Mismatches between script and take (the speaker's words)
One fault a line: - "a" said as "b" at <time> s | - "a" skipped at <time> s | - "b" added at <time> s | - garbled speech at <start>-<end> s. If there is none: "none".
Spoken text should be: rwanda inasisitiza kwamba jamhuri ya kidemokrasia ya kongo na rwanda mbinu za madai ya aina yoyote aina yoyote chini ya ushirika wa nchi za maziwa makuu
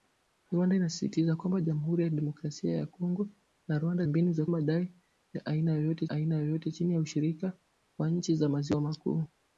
none